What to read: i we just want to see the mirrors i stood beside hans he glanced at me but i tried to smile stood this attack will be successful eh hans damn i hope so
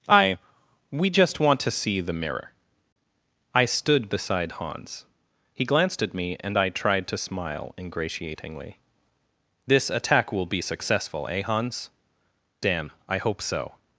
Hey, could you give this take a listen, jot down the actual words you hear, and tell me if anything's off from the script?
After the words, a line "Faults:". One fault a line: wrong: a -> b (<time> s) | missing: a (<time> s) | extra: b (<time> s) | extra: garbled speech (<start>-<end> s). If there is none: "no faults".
i we just want to see the mirror i stood beside hans he glanced at me and i tried to smile ingratiatingly this attack will be successful eh hans damn i hope so
Faults:
wrong: mirrors -> mirror (2.1 s)
wrong: but -> and (6.4 s)
wrong: stood -> ingratiatingly (7.8 s)